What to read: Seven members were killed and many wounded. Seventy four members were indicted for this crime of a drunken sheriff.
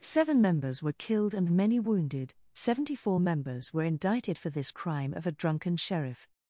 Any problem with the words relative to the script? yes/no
no